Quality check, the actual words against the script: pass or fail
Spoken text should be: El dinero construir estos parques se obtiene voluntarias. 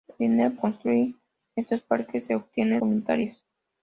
pass